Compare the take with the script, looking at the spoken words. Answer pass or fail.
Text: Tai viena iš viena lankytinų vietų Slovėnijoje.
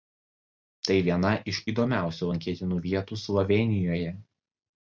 fail